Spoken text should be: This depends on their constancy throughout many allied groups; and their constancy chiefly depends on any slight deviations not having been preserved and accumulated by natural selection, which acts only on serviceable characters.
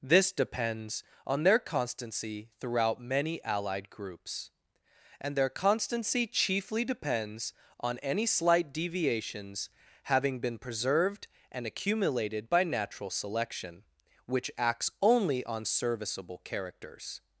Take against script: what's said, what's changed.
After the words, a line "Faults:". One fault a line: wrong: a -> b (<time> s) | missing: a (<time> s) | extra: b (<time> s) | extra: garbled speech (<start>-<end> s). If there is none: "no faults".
This depends on their constancy throughout many allied groups; and their constancy chiefly depends on any slight deviations having been preserved and accumulated by natural selection, which acts only on serviceable characters.
Faults:
missing: not (9.7 s)